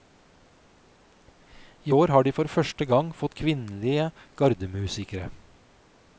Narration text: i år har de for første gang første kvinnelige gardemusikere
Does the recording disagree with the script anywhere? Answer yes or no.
yes